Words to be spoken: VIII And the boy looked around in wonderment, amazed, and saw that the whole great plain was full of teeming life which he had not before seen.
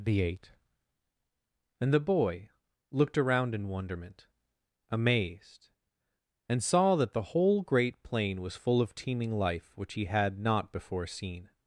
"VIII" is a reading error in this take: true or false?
true